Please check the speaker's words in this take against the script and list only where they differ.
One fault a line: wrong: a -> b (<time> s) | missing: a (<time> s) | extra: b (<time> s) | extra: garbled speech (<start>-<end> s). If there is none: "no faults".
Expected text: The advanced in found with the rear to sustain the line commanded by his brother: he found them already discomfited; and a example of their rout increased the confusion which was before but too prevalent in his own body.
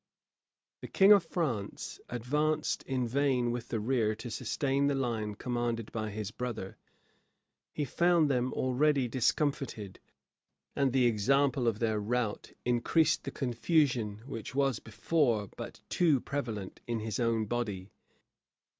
extra: king of France (0.9 s)
wrong: found -> vain (3.1 s)
wrong: a -> the (10.9 s)